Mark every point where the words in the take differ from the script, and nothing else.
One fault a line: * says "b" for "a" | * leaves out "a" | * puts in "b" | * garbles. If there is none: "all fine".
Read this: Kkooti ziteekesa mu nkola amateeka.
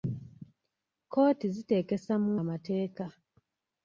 * leaves out "nkola"